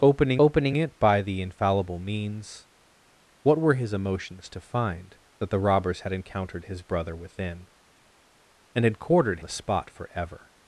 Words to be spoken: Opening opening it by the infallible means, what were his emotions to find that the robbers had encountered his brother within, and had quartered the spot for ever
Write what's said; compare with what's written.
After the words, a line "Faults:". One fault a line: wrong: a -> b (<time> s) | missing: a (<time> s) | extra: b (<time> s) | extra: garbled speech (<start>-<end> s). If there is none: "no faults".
Opening opening it by the infallible means, what were his emotions to find that the robbers had encountered his brother within, and had quartered the spot for ever
Faults:
no faults